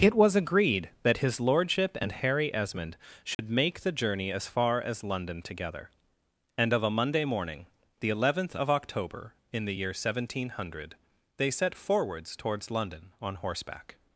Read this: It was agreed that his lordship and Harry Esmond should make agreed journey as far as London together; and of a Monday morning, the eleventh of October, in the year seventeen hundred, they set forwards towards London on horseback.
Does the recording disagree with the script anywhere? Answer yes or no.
yes